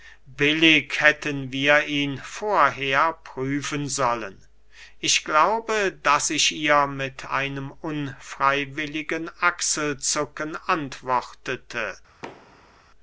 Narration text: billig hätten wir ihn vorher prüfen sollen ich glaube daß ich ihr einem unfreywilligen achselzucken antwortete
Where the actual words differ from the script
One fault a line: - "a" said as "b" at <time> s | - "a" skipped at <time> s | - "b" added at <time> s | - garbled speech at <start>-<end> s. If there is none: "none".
- "mit" added at 6.9 s